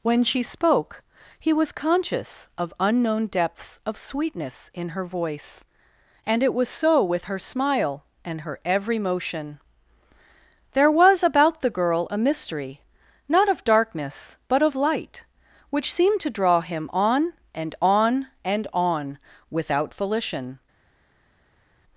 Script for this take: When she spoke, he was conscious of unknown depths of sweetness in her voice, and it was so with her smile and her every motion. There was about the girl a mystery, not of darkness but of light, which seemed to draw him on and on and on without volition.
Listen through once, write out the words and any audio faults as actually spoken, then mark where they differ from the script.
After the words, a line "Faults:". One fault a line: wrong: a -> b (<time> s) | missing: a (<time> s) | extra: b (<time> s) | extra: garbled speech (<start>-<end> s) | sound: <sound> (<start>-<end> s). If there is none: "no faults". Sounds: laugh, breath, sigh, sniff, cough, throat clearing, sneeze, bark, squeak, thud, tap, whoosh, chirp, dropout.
When she spoke, he was conscious of unknown depths of sweetness in her voice, and it was so with her smile and her every motion. There was about the girl a mystery, not of darkness but of light, which seemed to draw him on and on and on without volition.
Faults:
no faults